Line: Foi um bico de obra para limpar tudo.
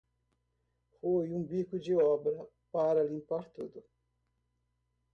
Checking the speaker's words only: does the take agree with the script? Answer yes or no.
yes